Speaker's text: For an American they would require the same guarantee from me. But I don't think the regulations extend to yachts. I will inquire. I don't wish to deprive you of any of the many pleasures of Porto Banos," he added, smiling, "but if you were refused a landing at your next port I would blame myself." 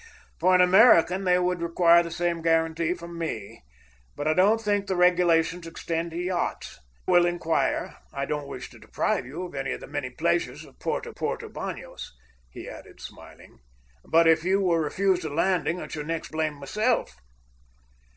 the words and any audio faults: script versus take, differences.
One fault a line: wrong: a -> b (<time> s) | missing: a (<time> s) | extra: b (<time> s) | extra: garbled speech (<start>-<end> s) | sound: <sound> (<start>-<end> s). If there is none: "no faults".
missing: I (6.8 s)
extra: Porto (11.1 s)
missing: port I would (16.3 s)